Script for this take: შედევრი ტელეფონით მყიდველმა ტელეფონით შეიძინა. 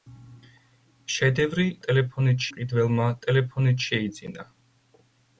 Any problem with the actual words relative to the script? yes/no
no